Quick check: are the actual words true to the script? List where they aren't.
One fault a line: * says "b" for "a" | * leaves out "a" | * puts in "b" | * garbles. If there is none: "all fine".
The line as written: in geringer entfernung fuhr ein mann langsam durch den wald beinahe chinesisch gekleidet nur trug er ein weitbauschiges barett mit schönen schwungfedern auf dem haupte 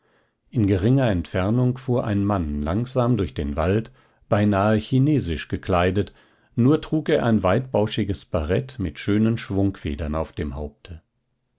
all fine